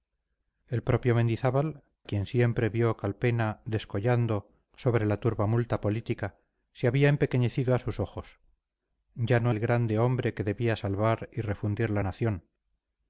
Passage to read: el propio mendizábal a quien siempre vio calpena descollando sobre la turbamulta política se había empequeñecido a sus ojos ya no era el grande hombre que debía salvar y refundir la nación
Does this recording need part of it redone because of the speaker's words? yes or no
yes